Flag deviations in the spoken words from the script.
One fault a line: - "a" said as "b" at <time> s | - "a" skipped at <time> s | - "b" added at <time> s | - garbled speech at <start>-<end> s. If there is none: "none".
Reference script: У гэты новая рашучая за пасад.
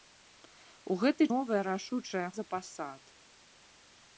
none